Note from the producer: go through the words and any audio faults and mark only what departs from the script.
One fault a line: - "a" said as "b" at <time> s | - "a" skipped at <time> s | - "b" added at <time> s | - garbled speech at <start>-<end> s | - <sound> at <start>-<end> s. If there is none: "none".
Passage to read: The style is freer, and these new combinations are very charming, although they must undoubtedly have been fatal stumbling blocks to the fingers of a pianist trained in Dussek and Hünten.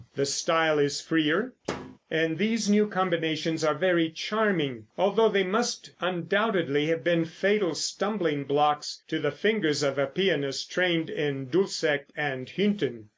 - thud at 1.6-2.0 s